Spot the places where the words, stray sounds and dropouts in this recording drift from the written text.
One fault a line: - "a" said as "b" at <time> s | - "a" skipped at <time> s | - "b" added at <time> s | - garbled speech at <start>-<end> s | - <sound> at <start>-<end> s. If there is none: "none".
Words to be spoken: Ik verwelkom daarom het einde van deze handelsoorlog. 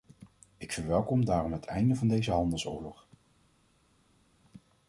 none